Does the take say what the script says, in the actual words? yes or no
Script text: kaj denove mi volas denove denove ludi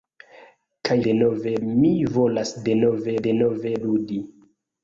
yes